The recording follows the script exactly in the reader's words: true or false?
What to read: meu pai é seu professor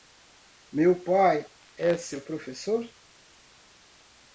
true